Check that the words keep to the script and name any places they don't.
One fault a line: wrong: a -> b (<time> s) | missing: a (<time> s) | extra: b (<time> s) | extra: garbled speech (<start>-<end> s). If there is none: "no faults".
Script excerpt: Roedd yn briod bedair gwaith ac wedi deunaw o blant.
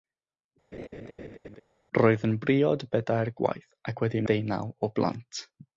no faults